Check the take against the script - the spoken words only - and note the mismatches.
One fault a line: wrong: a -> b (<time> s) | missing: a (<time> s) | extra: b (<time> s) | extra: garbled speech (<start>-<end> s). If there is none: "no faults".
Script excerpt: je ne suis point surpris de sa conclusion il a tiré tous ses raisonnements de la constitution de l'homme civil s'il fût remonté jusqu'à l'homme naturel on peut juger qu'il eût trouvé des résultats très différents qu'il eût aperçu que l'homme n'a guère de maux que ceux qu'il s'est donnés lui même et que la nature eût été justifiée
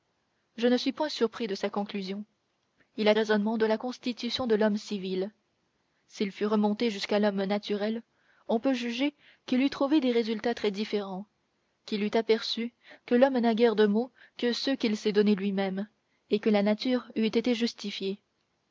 missing: tiré tous ses (3.1 s)